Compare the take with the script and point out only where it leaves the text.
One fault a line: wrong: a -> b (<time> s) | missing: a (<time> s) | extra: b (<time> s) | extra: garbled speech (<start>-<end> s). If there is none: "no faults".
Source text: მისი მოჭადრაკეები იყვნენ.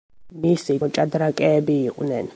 no faults